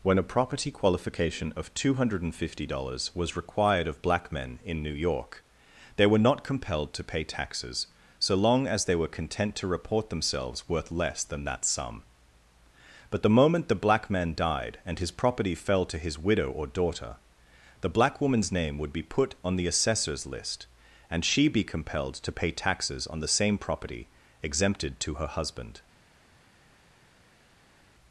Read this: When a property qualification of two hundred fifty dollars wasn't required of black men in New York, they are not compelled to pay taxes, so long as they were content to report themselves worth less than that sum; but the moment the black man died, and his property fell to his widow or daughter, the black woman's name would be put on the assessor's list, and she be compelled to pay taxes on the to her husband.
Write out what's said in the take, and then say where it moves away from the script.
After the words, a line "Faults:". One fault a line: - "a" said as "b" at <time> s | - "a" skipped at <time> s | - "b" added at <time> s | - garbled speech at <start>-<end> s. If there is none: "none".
When a property qualification of two hundred fifty dollars was required of black men in New York, they were not compelled to pay taxes, so long as they were content to report themselves worth less than that sum; but the moment the black man died, and his property fell to his widow or daughter, the black woman's name would be put on the assessor's list, and she be compelled to pay taxes on the same property exempted to her husband.
Faults:
- "wasn't" said as "was" at 3.1 s
- "are" said as "were" at 6.1 s
- "same property exempted" added at 23.3 s